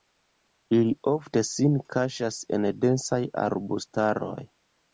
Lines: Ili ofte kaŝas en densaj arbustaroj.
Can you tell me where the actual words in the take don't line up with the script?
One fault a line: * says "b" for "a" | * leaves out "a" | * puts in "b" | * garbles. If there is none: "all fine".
* puts in "sin"